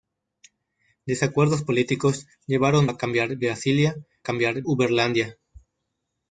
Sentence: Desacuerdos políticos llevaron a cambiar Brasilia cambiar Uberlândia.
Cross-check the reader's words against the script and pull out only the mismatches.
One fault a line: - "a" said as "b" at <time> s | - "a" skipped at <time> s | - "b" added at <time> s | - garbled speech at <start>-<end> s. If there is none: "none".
none